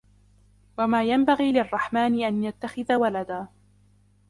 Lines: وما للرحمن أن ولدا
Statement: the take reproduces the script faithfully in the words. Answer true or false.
false